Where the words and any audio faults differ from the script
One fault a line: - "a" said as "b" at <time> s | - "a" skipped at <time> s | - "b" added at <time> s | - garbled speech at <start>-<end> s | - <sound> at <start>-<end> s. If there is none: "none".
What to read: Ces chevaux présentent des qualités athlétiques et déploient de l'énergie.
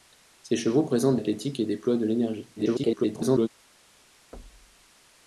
- "des qualités" skipped at 1.2 s
- garbled speech at 2.6-3.5 s
- thud at 4.3-4.9 s